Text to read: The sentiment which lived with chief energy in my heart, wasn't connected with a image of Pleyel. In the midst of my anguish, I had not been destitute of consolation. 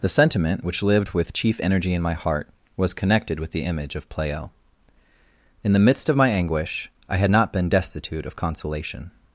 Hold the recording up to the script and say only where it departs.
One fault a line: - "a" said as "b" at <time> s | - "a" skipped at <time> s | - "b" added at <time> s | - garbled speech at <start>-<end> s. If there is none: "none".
- "wasn't" said as "was" at 2.8 s
- "a" said as "the" at 3.5 s